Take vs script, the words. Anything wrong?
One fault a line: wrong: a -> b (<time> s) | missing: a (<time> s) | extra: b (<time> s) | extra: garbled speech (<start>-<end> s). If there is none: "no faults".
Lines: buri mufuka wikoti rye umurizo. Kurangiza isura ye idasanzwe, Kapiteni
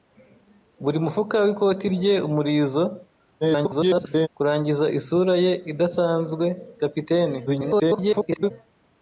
extra: garbled speech (3.4-4.3 s)
extra: garbled speech (7.5-8.5 s)